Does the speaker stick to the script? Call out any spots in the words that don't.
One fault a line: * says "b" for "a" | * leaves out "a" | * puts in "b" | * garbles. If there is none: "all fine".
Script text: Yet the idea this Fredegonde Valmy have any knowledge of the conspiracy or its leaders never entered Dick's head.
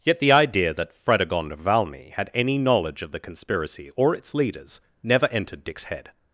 * says "that" for "this"
* says "had" for "have"